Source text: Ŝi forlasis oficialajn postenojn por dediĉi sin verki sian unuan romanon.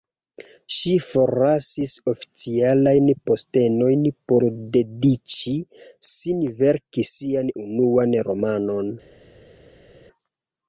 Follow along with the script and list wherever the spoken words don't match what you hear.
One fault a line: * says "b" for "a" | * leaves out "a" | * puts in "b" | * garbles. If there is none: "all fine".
all fine